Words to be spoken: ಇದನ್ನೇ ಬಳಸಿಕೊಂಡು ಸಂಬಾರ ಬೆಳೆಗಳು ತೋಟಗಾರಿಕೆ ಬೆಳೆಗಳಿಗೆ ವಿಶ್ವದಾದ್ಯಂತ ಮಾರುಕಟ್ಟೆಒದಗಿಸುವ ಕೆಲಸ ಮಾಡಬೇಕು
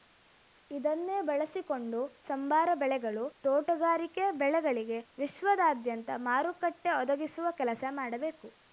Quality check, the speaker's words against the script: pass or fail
pass